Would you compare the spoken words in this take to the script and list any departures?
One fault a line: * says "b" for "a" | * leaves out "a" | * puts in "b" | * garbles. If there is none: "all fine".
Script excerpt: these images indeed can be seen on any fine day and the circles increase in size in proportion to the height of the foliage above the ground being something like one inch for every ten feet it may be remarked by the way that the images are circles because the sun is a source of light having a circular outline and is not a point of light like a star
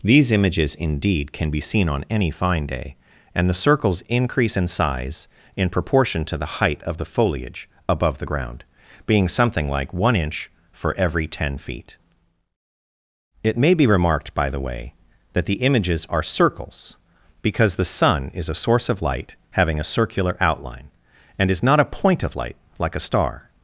all fine